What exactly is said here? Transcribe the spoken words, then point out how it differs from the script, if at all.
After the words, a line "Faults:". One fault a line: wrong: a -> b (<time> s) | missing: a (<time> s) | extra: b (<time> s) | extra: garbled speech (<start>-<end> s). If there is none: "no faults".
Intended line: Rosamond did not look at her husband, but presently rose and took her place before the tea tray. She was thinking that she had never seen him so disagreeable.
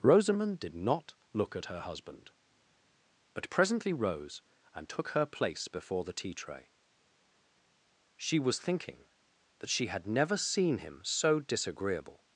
Rosamond did not look at her husband, but presently rose and took her place before the tea tray. She was thinking that she had never seen him so disagreeable.
Faults:
no faults